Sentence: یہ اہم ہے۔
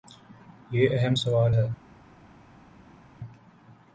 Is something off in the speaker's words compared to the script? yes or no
yes